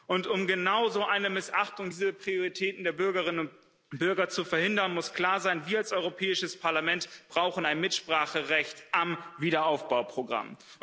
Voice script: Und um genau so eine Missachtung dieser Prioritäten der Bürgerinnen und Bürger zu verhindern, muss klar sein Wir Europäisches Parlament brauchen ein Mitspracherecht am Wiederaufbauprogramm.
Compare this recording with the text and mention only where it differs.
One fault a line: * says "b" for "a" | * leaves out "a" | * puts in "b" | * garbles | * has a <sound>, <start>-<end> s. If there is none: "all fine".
* puts in "als"